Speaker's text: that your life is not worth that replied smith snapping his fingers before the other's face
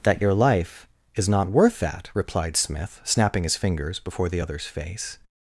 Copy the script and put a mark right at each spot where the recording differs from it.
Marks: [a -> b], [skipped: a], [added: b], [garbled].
that your life is not worth that replied smith snapping his fingers before the other's face